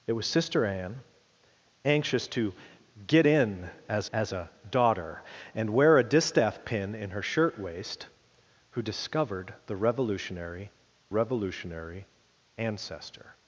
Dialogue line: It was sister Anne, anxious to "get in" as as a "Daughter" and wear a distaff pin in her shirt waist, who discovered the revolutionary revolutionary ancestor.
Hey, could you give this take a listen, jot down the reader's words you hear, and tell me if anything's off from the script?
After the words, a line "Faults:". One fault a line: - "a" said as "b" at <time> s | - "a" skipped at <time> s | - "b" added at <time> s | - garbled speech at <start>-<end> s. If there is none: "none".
It was sister Anne, anxious to "get in" as as a "Daughter" and wear a distaff pin in her shirt waist, who discovered the revolutionary revolutionary ancestor.
Faults:
none